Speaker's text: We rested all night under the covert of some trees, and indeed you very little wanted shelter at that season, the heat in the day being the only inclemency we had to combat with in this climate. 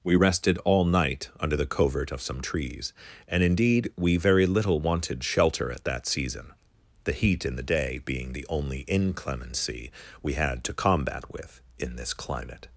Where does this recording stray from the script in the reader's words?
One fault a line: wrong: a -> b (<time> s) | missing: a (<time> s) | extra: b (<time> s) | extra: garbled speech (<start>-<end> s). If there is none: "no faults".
wrong: you -> we (4.0 s)